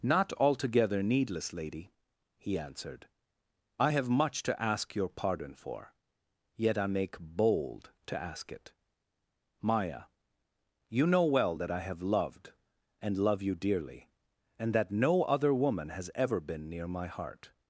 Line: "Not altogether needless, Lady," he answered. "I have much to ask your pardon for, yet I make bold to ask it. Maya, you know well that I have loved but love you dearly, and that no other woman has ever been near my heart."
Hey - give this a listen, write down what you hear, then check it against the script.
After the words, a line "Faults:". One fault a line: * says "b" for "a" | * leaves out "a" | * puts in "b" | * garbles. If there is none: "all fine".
"Not altogether needless, Lady," he answered. "I have much to ask your pardon for, yet I make bold to ask it. Maya, you know well that I have loved and love you dearly, and that no other woman has ever been near my heart."
Faults:
* says "and" for "but"